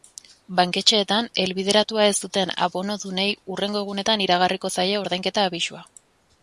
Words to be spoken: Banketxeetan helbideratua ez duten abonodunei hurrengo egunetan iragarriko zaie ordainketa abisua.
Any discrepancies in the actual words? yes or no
no